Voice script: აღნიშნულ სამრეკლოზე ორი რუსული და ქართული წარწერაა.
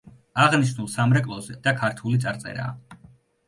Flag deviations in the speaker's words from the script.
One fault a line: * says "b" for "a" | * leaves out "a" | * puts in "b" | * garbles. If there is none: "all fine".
* leaves out "ორი რუსული"